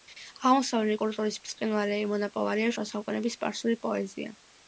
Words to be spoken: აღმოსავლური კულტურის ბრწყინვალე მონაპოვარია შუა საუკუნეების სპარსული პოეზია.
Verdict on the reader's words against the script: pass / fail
pass